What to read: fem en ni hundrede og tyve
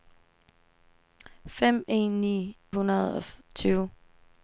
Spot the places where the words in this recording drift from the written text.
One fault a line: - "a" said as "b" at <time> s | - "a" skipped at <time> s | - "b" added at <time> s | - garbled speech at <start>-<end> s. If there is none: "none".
none